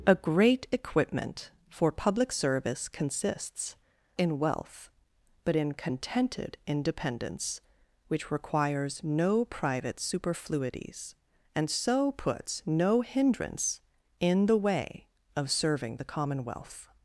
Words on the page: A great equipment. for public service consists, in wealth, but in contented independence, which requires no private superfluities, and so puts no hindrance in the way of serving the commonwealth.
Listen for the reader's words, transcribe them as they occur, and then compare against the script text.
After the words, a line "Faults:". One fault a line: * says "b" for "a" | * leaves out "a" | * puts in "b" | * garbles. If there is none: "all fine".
A great equipment. for public service consists, in wealth, but in contented independence, which requires no private superfluities, and so puts no hindrance in the way of serving the commonwealth.
Faults:
all fine